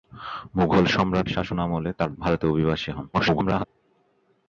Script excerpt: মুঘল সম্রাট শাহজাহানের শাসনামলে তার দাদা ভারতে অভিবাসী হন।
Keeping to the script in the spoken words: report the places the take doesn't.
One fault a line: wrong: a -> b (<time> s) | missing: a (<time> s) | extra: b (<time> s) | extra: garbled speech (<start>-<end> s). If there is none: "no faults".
missing: শাহজাহানের (1.3 s)
missing: দাদা (2.1 s)
extra: garbled speech (3.1-3.7 s)